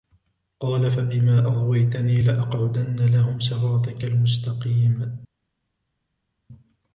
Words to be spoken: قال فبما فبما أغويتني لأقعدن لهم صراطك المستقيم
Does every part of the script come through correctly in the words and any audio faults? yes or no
no